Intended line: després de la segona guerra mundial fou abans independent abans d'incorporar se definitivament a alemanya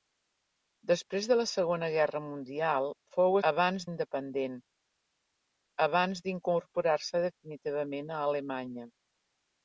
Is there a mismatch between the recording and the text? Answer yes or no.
no